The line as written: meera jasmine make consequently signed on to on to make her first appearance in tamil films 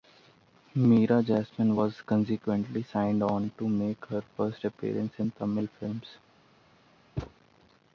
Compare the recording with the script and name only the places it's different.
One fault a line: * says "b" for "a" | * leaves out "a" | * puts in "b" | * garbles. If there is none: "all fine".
* says "was" for "make"
* leaves out "on to"